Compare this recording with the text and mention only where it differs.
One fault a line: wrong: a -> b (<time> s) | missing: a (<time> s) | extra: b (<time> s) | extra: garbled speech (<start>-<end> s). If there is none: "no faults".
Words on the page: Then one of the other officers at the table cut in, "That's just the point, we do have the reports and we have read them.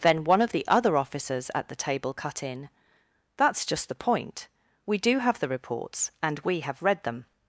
no faults